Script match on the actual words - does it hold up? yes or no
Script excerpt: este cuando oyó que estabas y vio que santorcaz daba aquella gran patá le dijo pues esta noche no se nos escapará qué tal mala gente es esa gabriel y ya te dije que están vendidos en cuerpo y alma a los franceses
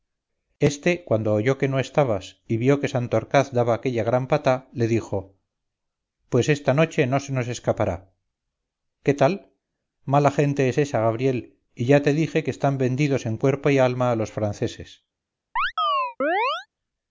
no